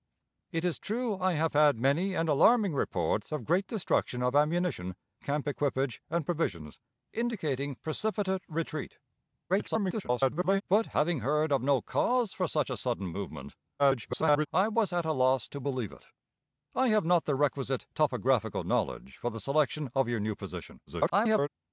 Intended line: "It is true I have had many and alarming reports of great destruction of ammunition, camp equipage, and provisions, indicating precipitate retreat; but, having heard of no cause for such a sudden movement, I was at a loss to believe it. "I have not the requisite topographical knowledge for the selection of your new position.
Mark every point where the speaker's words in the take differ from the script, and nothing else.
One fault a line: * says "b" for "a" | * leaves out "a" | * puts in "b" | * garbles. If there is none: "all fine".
* garbles
* garbles
* garbles